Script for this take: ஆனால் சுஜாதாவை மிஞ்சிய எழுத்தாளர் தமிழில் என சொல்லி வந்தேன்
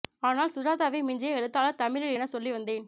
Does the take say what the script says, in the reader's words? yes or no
yes